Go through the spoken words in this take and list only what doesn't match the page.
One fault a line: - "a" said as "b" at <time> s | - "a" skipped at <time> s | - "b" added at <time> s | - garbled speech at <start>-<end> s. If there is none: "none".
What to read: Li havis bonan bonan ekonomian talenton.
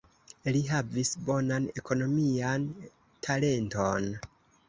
- "bonan" skipped at 1.7 s